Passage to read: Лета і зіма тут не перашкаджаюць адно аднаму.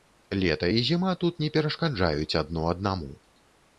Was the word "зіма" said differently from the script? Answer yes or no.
no